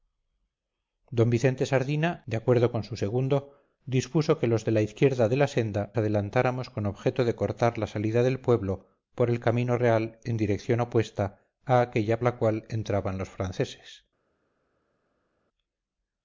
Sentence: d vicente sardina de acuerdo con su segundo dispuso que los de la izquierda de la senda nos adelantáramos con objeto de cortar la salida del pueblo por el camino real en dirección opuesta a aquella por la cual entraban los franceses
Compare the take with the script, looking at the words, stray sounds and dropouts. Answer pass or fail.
fail